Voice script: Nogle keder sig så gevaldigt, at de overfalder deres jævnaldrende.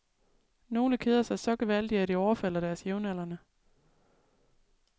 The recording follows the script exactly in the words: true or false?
true